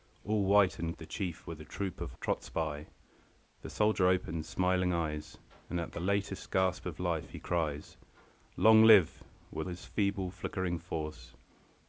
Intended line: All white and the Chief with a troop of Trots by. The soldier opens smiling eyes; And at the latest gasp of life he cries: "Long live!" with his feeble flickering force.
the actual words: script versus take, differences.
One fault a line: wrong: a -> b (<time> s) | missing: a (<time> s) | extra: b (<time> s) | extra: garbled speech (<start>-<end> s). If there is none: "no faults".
no faults